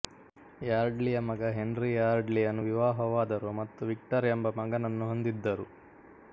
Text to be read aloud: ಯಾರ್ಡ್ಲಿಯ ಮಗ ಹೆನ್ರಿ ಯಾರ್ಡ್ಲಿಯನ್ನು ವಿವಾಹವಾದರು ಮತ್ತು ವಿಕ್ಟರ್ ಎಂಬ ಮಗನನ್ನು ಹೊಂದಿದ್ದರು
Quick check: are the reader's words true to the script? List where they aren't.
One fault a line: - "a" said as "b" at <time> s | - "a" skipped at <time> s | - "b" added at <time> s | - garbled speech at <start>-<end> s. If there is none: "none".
none